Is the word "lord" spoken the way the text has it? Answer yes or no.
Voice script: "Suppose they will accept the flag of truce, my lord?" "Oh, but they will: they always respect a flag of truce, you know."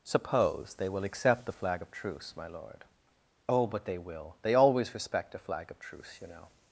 yes